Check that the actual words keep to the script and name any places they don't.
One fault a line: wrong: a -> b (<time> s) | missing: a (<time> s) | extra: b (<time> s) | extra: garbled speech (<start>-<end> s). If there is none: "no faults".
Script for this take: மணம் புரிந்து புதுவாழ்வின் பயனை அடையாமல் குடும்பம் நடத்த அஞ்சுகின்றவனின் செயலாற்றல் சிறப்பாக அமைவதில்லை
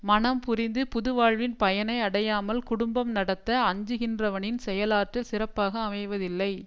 no faults